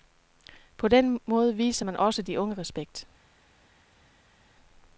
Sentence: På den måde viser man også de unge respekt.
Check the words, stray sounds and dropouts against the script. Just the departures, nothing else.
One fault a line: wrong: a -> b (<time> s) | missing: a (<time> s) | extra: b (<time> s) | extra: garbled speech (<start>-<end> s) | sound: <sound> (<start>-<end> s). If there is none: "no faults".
no faults